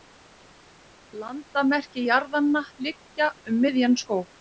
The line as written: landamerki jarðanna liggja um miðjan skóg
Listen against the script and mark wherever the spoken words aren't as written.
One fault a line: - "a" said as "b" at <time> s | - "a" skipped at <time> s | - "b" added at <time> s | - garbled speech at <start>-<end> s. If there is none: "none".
none